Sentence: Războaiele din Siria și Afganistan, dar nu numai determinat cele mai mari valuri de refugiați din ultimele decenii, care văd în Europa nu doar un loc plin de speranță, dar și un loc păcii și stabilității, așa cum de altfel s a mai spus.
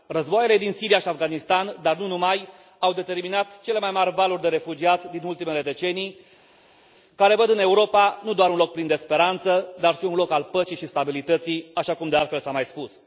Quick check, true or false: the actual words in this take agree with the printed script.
false